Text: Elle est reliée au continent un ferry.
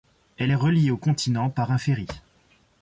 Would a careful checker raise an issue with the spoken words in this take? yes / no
yes